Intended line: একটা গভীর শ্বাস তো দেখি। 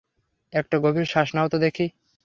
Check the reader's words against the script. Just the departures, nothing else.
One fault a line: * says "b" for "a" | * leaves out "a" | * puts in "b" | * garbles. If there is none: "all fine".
* puts in "নাও"